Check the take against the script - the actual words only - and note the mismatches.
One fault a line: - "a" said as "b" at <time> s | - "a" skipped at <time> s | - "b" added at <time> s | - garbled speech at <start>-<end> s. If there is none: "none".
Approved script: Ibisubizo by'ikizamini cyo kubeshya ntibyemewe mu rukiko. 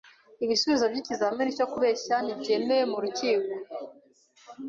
none